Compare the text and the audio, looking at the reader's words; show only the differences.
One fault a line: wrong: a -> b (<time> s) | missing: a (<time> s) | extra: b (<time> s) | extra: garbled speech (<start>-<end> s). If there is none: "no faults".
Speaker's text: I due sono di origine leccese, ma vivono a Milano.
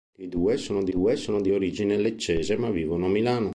extra: due sono di (0.9 s)